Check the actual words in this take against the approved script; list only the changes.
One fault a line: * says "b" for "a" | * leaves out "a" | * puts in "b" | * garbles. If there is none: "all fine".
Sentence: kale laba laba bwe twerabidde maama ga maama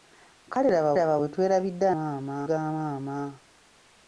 all fine